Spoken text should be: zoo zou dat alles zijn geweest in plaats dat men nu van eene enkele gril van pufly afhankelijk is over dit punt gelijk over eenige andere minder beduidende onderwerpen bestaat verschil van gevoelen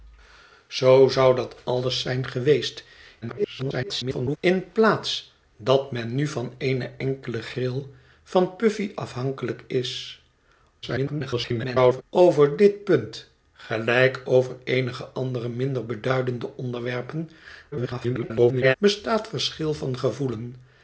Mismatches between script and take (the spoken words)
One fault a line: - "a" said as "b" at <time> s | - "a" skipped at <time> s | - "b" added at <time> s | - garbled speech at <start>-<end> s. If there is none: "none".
- garbled speech at 3.2-4.4 s
- garbled speech at 10.8-12.0 s
- garbled speech at 17.7-18.7 s